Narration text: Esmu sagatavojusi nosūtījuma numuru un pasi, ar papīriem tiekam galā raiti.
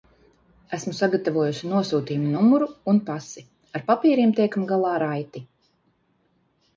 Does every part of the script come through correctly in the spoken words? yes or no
yes